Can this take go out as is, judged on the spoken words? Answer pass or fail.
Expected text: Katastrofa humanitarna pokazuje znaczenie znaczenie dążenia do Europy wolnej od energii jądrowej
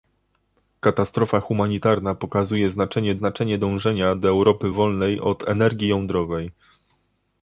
pass